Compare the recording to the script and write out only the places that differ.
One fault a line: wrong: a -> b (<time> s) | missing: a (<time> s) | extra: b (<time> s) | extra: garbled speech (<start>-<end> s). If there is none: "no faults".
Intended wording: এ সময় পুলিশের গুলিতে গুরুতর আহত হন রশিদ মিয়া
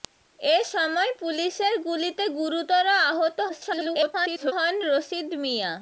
extra: garbled speech (3.5-4.5 s)